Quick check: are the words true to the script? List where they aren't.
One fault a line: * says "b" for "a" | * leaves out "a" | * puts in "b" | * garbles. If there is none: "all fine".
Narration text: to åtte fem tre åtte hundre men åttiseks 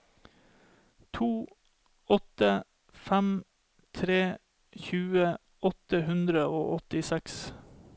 * puts in "tjue"
* says "og" for "men"